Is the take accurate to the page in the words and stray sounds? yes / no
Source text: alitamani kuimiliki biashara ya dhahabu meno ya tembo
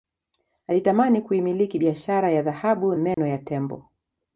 no